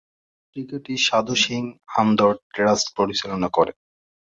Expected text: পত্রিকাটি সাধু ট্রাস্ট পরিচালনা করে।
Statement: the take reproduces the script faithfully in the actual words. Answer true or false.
false